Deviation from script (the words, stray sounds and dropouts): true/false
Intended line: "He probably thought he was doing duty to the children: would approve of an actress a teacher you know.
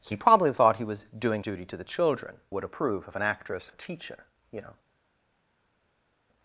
false